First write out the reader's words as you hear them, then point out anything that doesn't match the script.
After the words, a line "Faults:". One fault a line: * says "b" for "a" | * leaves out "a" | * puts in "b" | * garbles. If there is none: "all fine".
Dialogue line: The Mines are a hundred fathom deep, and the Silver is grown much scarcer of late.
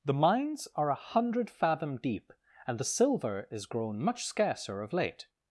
The Mines are a hundred fathom deep, and the Silver is grown much scarcer of late.
Faults:
all fine